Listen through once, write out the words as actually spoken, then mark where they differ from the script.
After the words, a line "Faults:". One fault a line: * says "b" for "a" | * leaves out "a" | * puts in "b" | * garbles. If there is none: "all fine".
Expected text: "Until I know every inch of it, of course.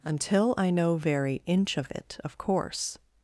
"Until I know very inch of it, of course.
Faults:
* says "very" for "every"